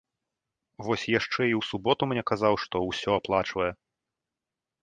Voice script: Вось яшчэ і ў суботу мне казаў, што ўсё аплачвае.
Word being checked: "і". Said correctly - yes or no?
yes